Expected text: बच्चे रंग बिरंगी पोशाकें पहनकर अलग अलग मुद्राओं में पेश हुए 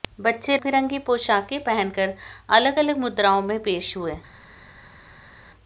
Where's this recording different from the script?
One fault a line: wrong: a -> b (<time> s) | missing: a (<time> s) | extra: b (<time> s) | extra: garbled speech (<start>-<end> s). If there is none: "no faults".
missing: रंग (0.6 s)